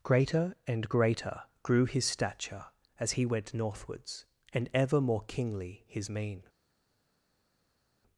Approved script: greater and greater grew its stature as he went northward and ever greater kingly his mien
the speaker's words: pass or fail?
fail